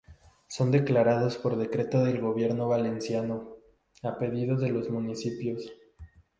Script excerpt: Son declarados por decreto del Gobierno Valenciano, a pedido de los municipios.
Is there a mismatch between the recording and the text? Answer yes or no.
no